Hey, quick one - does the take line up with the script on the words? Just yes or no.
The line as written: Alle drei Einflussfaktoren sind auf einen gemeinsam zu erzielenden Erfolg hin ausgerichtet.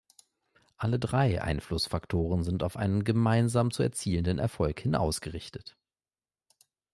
yes